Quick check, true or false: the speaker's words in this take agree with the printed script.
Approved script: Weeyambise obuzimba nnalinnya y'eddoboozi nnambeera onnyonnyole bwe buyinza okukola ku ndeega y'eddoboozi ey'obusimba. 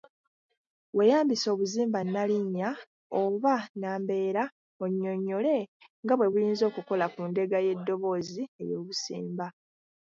false